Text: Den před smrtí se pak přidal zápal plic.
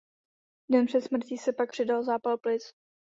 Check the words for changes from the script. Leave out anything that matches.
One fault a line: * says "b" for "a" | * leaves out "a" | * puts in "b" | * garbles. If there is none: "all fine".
all fine